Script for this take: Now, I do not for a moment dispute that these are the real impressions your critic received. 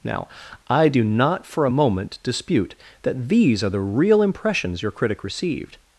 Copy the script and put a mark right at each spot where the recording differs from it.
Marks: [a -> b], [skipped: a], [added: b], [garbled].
Now, I do not for a moment dispute that these are the real impressions your critic received.